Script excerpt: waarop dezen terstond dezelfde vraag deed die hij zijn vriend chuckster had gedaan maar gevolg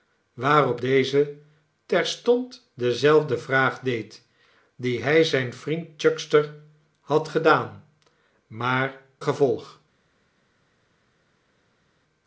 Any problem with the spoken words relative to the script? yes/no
no